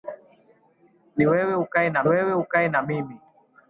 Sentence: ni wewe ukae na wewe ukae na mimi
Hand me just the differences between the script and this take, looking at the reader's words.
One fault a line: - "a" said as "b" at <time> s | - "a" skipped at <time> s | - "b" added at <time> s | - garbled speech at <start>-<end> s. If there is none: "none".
none